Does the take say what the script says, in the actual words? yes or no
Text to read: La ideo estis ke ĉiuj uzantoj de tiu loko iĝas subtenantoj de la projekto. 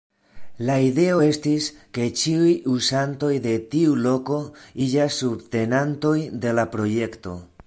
yes